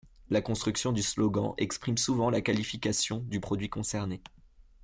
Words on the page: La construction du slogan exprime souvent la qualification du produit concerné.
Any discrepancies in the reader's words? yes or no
no